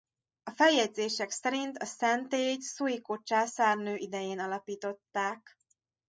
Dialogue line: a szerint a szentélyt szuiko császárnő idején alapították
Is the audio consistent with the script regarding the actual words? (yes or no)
no